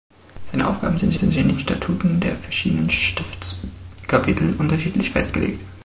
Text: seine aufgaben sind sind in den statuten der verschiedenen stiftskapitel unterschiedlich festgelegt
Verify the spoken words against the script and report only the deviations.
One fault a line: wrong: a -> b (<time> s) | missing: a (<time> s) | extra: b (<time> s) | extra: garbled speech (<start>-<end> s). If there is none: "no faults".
no faults